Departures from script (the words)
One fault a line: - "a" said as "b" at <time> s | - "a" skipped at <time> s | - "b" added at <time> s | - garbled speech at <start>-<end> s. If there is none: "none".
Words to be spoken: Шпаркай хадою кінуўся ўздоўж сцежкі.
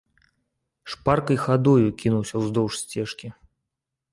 none